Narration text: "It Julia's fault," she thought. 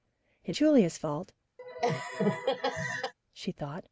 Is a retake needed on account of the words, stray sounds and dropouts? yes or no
yes